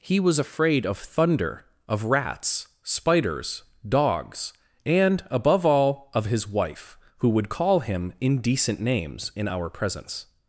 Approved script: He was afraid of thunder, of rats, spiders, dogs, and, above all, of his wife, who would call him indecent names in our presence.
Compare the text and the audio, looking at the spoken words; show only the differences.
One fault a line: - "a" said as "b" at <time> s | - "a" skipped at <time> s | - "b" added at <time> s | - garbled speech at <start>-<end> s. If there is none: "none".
none